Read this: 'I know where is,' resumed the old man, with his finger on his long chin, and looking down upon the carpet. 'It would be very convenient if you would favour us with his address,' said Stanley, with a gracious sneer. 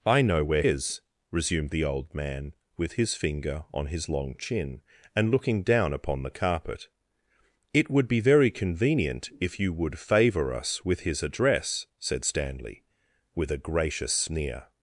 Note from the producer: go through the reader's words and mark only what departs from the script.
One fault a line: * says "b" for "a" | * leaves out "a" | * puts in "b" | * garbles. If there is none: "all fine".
all fine